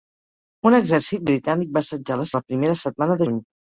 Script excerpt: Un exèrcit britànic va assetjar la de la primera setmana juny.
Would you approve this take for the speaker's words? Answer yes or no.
yes